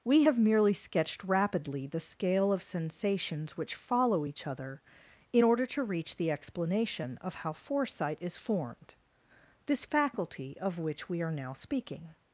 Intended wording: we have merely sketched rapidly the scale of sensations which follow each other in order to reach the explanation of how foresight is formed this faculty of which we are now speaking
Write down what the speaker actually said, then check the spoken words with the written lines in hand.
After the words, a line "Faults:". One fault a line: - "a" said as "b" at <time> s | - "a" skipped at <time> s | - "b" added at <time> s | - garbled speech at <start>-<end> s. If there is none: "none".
we have merely sketched rapidly the scale of sensations which follow each other in order to reach the explanation of how foresight is formed this faculty of which we are now speaking
Faults:
none